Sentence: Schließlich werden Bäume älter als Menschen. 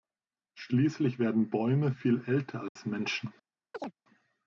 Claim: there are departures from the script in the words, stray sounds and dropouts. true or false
true